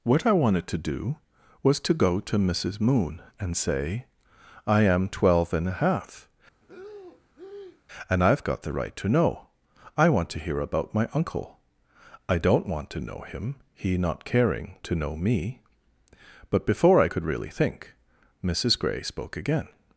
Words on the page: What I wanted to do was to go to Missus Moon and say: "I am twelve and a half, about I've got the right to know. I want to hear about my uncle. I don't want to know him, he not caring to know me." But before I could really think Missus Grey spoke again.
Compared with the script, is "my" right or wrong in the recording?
right